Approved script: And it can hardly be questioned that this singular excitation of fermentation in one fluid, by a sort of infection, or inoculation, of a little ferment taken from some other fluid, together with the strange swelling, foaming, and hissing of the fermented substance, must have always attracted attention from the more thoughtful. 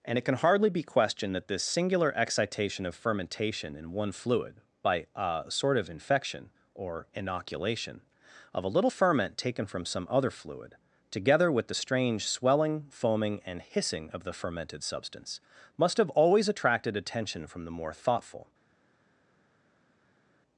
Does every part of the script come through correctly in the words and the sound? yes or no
yes